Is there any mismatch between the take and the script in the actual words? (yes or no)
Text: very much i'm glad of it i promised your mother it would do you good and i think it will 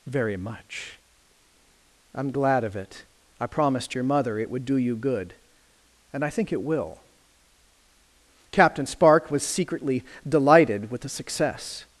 yes